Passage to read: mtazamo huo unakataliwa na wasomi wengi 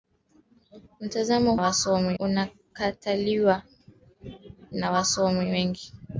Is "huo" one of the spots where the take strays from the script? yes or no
yes